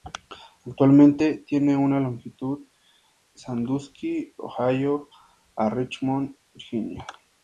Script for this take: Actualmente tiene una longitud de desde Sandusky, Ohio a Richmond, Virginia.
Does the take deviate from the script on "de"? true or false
true